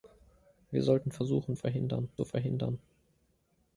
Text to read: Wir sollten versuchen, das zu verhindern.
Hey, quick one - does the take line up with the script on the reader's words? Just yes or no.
no